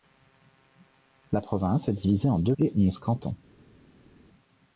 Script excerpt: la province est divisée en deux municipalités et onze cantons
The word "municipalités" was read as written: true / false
false